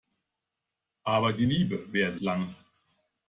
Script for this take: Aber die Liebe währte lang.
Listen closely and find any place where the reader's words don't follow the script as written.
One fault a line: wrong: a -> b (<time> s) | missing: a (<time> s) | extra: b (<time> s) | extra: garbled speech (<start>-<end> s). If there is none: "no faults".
no faults